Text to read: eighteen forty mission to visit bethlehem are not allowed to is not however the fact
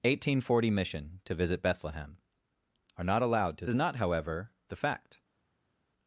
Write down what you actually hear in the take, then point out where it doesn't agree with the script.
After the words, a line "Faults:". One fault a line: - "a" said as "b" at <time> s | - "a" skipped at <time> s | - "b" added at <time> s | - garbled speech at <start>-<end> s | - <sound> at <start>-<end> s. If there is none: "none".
eighteen forty mission to visit bethlehem are not allowed to is not however the fact
Faults:
none